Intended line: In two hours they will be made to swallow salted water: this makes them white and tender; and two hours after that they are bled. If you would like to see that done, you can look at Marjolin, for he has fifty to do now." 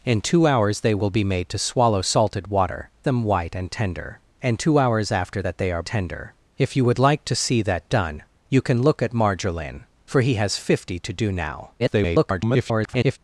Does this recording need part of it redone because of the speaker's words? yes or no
yes